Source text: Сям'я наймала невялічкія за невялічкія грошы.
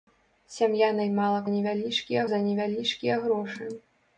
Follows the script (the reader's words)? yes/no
yes